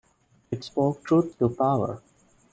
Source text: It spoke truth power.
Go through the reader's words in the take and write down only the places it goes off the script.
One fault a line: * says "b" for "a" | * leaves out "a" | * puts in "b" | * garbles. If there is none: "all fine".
* puts in "to"